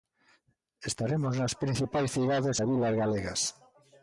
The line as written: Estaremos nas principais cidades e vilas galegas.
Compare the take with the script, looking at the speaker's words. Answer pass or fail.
pass